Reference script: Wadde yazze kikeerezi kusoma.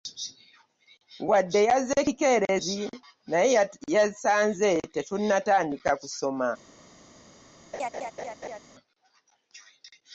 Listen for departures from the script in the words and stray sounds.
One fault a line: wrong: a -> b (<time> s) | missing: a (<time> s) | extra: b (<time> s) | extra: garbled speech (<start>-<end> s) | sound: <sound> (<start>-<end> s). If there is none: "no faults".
extra: naye yasanze tetunnatandika (3.3 s)
sound: laugh (7.7-8.6 s)